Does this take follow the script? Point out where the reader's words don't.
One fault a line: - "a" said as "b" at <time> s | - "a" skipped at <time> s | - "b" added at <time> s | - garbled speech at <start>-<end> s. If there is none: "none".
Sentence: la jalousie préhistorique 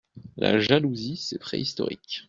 - "c'est" added at 1.2 s